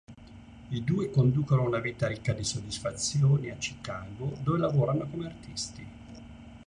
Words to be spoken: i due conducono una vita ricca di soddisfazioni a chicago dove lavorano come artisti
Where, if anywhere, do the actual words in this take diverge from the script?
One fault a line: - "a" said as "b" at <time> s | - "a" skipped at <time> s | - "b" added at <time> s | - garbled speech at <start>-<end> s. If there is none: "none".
none